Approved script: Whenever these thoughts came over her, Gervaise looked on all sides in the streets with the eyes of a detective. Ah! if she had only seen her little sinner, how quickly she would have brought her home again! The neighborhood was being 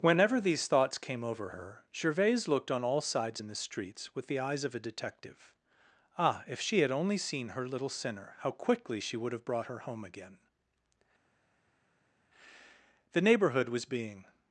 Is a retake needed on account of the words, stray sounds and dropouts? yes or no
no